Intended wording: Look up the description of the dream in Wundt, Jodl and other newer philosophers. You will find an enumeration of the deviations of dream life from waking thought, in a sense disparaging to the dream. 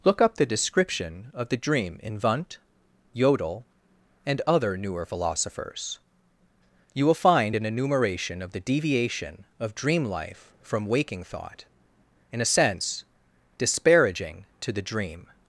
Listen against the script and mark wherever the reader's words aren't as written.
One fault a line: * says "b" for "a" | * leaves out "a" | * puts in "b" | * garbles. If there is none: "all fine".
* says "deviation" for "deviations"